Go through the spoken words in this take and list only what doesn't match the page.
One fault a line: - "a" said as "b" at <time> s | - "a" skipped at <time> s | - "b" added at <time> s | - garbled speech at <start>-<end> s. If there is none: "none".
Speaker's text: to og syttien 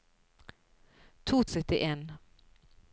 none